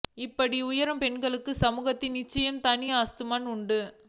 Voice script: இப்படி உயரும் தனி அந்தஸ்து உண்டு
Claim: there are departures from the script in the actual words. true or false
true